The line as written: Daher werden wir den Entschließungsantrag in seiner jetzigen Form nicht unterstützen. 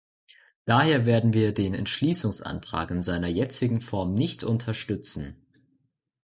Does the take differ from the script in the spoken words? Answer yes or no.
no